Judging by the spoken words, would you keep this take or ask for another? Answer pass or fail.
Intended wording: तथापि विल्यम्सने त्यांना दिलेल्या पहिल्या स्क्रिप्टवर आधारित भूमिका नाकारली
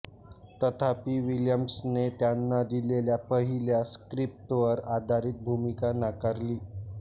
pass